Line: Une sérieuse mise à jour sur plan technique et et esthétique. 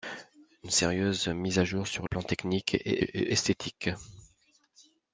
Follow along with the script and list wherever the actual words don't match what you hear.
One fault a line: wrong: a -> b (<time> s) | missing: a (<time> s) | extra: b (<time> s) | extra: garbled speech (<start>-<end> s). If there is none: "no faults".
no faults